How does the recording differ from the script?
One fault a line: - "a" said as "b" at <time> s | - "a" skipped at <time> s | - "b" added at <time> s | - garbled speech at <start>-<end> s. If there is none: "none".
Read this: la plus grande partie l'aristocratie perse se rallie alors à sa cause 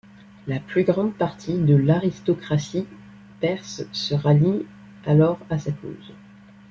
- "de" added at 1.6 s